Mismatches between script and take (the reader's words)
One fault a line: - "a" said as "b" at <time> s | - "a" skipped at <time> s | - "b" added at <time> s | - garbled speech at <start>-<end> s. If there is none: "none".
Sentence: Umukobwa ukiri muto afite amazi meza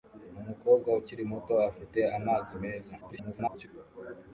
- garbled speech at 3.0-3.7 s